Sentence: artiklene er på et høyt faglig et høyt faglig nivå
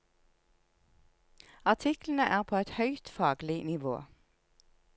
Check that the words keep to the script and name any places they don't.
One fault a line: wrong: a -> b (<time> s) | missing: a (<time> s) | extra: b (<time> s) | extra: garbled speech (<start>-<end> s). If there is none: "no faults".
missing: et høyt faglig (3.6 s)